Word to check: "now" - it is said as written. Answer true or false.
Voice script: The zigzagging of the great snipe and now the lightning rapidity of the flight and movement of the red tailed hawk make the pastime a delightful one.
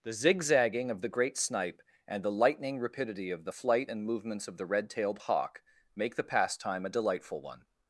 false